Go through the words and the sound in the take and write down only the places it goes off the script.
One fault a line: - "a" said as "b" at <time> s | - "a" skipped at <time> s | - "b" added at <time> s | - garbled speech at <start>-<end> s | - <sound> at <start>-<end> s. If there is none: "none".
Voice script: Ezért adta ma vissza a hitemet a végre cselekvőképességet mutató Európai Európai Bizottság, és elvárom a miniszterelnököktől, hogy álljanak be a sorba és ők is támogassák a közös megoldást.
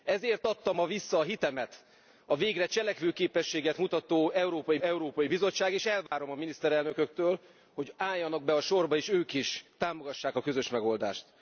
- dropout at 6.1-6.1 s